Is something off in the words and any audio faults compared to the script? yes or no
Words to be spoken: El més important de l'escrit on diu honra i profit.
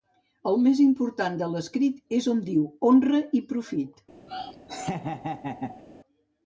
yes